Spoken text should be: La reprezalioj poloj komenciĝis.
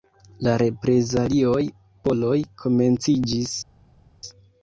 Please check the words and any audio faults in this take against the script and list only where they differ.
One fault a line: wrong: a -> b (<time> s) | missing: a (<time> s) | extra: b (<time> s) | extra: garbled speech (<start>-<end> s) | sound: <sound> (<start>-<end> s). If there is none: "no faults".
no faults